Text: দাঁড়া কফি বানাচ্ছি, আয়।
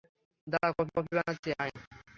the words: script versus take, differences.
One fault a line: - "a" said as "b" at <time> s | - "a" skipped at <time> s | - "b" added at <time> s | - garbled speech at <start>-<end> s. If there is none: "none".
- "কফি" added at 0.9 s